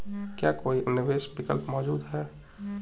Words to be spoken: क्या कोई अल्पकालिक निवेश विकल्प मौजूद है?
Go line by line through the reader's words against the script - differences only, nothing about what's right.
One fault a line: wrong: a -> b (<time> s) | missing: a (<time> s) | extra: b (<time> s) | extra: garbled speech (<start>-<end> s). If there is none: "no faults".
missing: अल्पकालिक (0.8 s)